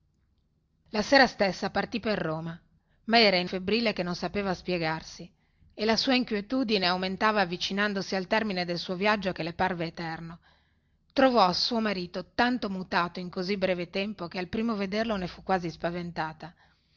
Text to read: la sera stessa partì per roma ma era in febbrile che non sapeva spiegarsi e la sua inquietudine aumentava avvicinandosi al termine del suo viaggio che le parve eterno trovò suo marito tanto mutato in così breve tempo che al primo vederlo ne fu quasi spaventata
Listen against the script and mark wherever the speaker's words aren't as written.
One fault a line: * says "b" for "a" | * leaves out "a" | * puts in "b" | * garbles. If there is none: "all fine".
all fine